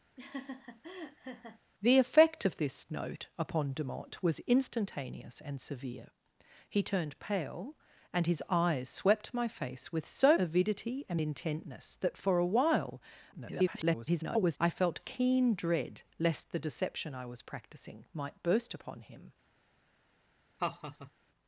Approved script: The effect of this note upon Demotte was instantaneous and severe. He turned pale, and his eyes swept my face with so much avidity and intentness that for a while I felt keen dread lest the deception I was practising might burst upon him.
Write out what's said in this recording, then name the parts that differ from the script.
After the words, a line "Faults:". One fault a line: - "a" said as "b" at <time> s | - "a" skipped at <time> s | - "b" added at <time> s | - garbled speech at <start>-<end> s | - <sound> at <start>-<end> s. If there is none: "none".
The effect of this note upon Demotte was instantaneous and severe. He turned pale, and his eyes swept my face with so avidity and intentness that for a while [garbled] I felt keen dread lest the deception I was practising might burst upon him.
Faults:
- laugh at 0.2-1.6 s
- "much" skipped at 10.4 s
- garbled speech at 13.3-14.6 s
- laugh at 20.6-21.1 s